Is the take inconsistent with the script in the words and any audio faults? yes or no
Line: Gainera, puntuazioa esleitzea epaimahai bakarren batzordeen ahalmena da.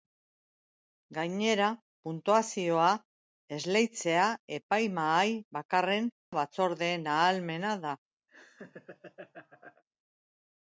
yes